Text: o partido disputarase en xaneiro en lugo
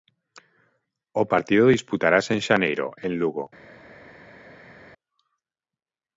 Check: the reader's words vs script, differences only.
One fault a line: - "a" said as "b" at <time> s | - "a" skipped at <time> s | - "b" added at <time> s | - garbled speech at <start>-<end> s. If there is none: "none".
none